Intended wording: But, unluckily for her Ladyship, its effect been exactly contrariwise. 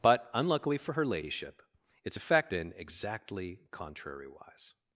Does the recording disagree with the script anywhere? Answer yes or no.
no